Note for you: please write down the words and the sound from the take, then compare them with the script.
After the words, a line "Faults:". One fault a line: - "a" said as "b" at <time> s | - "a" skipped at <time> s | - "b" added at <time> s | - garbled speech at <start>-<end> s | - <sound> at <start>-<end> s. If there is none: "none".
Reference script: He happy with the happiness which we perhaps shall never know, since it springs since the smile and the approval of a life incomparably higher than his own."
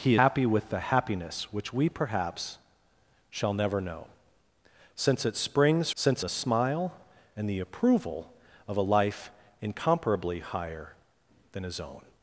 He happy with the happiness which we perhaps shall never know, since it springs since the smile and the approval of a life incomparably higher than his own."
Faults:
none